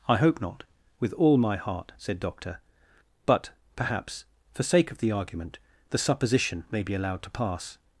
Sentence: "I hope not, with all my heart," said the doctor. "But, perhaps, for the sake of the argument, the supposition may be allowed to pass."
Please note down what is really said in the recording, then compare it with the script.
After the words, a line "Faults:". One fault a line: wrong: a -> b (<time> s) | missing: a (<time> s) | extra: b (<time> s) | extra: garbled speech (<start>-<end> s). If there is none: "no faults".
"I hope not, with all my heart," said doctor. "But, perhaps, for sake of the argument, the supposition may be allowed to pass."
Faults:
missing: the (2.2 s)
missing: the (4.6 s)